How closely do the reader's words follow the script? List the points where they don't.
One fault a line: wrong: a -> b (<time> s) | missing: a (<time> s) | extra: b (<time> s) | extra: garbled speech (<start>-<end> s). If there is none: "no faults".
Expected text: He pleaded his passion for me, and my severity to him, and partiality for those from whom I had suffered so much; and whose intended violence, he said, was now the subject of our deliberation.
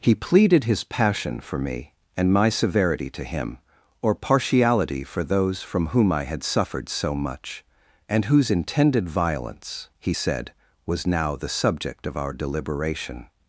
wrong: and -> or (4.0 s)